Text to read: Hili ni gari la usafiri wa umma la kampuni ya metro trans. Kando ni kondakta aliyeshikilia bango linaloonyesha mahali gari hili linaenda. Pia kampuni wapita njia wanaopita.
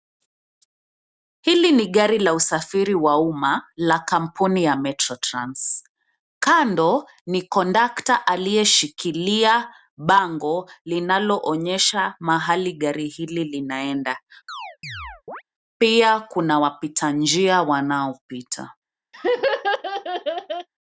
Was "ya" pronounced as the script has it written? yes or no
yes